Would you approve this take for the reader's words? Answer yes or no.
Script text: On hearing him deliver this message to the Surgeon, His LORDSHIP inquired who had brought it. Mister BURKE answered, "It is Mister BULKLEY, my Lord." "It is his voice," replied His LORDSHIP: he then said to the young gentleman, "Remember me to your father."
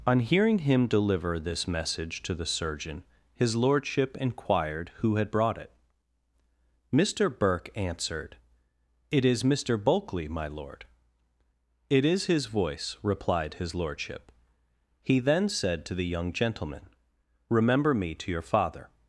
yes